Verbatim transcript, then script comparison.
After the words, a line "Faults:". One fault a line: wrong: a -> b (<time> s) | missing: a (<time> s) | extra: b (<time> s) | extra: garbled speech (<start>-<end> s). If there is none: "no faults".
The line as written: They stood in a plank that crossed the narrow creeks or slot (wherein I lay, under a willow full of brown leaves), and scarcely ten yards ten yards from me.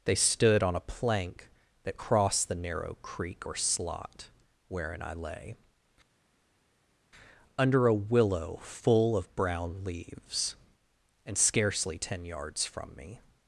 They stood on a plank that crossed the narrow creek or slot (wherein I lay, under a willow full of brown leaves), and scarcely ten yards from me.
Faults:
wrong: in -> on (0.6 s)
wrong: creeks -> creek (3.0 s)
missing: ten yards (12.6 s)